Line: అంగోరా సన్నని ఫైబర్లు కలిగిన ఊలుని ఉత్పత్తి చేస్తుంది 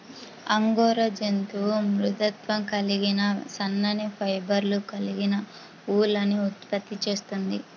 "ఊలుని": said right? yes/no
yes